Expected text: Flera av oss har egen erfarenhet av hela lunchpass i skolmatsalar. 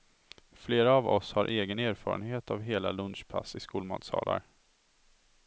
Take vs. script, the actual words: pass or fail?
pass